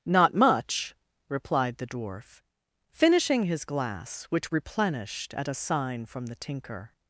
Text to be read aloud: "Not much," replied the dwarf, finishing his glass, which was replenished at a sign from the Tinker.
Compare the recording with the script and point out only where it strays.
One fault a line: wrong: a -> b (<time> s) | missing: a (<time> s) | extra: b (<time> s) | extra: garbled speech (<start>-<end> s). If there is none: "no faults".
missing: was (4.5 s)